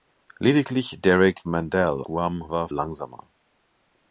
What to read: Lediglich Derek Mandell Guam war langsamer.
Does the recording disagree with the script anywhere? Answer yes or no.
no